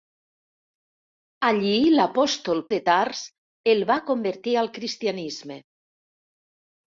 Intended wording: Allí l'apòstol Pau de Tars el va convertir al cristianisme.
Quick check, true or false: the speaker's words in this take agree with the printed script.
false